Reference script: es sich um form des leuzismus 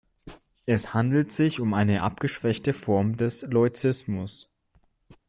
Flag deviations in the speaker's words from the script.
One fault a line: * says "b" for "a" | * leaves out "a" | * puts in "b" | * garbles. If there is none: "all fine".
* puts in "handelt"
* puts in "eine abgeschwächte"